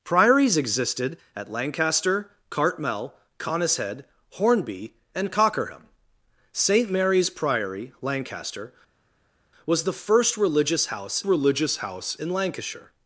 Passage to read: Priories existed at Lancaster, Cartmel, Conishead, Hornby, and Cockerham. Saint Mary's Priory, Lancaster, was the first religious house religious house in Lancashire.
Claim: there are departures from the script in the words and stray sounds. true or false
false